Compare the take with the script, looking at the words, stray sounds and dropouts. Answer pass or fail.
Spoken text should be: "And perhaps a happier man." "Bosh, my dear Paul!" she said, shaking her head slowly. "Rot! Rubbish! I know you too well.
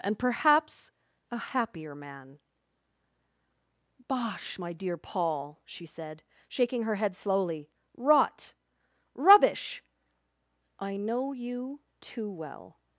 pass